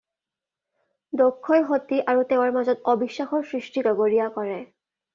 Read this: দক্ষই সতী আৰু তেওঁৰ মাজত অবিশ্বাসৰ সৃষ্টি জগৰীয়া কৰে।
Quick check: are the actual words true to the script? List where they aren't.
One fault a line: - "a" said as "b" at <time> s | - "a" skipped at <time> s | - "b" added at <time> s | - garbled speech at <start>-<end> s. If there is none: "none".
none